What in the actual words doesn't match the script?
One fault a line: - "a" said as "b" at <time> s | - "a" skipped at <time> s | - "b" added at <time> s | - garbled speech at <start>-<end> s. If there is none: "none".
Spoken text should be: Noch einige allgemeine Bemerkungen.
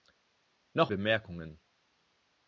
- "einige allgemeine" skipped at 0.9 s